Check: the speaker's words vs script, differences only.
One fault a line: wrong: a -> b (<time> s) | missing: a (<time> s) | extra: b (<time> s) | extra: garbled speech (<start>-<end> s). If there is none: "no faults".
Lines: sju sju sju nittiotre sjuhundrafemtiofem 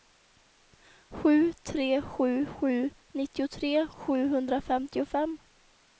extra: tre (1.7 s)